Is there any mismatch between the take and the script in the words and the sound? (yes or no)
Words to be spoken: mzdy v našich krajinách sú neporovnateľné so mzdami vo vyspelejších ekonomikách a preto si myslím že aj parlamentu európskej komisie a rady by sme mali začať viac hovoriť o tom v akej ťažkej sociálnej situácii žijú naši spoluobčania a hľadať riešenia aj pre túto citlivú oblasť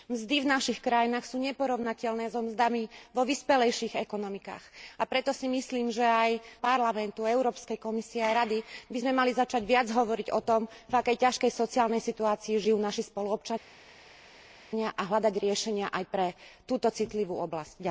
no